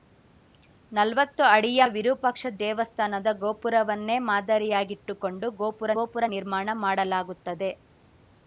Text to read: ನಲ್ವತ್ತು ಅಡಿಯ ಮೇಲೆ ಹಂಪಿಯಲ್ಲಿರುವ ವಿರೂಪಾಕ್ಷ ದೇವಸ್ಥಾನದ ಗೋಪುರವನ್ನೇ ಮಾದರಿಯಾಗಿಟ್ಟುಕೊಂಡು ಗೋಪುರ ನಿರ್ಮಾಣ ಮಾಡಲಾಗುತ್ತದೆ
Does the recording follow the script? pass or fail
fail